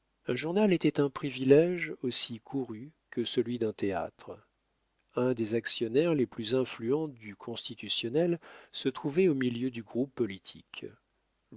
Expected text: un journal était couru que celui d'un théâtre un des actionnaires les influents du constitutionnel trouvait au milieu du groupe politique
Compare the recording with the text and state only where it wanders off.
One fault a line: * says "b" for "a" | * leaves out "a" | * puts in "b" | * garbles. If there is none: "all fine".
* puts in "un privilége aussi"
* puts in "plus"
* puts in "se"